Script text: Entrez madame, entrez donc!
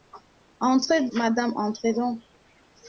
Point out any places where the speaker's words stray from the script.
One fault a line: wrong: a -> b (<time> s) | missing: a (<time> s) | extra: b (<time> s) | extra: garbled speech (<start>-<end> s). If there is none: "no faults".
no faults